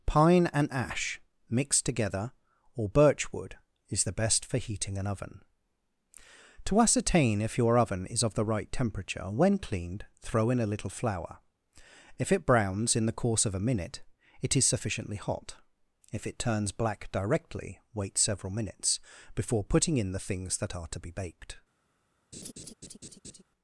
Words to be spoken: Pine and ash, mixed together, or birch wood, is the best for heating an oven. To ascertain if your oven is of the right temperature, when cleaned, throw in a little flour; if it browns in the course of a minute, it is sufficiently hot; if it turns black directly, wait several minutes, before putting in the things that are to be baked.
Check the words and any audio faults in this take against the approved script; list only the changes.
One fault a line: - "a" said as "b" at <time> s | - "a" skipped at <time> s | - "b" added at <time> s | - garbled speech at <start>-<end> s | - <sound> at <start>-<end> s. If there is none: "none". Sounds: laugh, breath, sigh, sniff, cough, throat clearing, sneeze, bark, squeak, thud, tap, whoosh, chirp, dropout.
- laugh at 22.3-23.4 s